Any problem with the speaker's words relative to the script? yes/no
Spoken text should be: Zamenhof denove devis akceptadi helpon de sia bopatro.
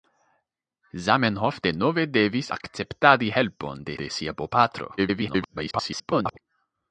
yes